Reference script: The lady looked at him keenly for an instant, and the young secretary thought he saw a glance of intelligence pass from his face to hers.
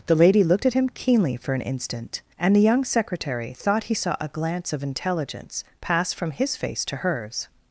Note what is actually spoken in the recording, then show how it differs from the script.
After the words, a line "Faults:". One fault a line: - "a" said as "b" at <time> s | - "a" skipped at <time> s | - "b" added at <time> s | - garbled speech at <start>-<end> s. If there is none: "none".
The lady looked at him keenly for an instant, and the young secretary thought he saw a glance of intelligence pass from his face to hers.
Faults:
none